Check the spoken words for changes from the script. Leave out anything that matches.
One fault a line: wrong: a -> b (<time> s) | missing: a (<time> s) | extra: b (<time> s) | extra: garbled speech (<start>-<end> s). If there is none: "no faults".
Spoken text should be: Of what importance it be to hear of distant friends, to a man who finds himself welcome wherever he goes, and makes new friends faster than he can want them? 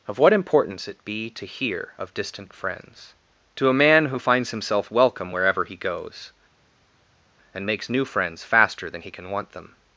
no faults